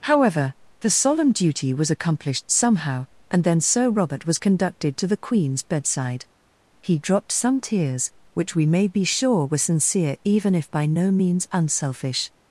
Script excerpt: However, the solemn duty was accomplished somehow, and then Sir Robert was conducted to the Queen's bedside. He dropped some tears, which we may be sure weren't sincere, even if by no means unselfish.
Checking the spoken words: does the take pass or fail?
fail